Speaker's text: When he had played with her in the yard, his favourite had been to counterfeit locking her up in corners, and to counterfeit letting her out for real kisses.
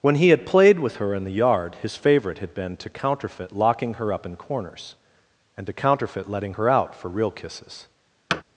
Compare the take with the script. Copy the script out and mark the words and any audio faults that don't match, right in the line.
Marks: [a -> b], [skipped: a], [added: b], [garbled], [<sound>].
When he had played with her in the yard, his favourite had been to counterfeit locking her up in corners, and to counterfeit letting her out for real kisses. [thud]